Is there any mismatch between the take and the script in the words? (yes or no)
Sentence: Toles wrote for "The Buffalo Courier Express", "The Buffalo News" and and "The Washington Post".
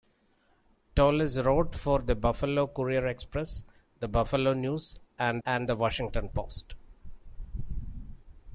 no